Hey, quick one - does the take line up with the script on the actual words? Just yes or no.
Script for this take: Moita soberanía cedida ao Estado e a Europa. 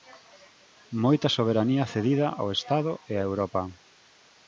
yes